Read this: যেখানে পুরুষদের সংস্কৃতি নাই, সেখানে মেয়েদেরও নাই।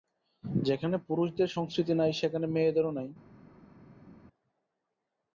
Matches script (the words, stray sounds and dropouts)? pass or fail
pass